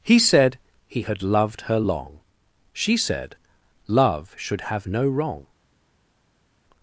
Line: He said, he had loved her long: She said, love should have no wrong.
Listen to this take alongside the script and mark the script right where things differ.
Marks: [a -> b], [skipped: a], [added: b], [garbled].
He said, he had loved her long: She said, love should have no wrong.